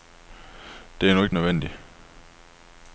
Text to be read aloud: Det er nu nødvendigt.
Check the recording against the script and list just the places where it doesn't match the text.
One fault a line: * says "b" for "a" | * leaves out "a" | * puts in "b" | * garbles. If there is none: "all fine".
* puts in "ikke"